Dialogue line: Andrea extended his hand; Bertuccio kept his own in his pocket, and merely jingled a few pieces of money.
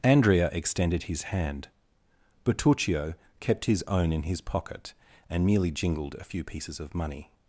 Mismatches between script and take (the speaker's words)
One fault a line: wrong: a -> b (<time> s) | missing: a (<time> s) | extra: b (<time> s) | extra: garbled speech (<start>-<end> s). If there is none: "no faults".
no faults